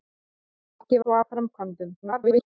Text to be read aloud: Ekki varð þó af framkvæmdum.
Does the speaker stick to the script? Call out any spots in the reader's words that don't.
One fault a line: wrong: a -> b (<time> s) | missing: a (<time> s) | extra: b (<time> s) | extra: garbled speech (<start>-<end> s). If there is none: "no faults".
missing: varð (1.0 s)
extra: garbled speech (2.0-2.5 s)